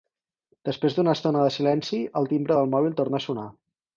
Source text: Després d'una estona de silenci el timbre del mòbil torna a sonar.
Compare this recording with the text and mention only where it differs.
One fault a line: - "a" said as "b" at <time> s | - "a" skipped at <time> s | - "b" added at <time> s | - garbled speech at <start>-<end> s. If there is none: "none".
none